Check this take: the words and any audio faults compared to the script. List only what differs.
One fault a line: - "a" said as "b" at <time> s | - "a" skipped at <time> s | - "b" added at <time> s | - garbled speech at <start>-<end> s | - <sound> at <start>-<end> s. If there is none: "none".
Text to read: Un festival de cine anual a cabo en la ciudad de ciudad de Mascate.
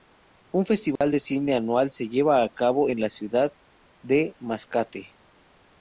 - dropout at 1.0-1.0 s
- "se lleva" added at 1.9 s
- "ciudad de" skipped at 4.4 s